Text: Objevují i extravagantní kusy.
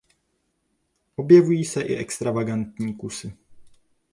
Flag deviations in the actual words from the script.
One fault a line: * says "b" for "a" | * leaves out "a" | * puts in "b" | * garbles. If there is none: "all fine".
* puts in "se"